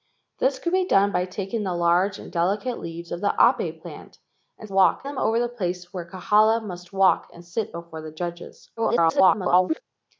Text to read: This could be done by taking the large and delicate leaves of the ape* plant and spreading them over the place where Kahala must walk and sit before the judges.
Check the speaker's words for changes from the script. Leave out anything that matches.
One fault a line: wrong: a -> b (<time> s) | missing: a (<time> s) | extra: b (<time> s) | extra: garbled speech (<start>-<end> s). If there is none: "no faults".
wrong: spreading -> walk (4.7 s)
extra: garbled speech (8.8-9.8 s)